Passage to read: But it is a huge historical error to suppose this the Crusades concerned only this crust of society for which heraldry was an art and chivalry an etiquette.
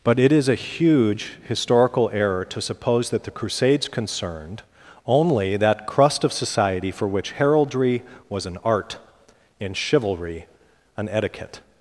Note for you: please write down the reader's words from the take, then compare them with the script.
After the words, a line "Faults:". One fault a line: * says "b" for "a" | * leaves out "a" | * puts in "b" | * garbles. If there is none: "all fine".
But it is a huge historical error to suppose that the Crusades concerned only that crust of society for which heraldry was an art and chivalry an etiquette.
Faults:
* says "that" for "this"
* says "that" for "this"